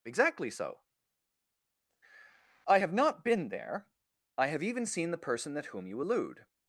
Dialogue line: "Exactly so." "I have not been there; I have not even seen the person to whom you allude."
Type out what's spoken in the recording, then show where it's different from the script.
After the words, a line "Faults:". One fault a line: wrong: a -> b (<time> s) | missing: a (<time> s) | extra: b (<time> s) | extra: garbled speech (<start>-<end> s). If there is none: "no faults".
"Exactly so." "I have not been there; I have even seen the person at whom you allude."
Faults:
missing: not (4.6 s)
wrong: to -> at (5.6 s)